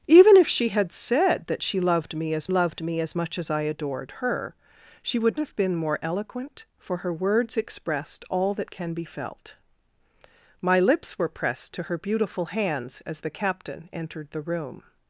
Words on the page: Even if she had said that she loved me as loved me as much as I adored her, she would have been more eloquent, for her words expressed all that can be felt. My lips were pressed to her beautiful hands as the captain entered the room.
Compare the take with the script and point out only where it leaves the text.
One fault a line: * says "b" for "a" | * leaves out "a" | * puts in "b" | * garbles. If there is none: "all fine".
all fine